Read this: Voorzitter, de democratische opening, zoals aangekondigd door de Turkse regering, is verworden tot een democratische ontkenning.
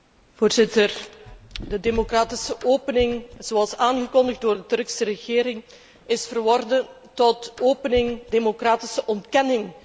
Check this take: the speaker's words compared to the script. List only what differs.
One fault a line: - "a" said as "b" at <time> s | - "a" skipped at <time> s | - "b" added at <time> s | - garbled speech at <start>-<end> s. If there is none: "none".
- "een" said as "opening" at 7.6 s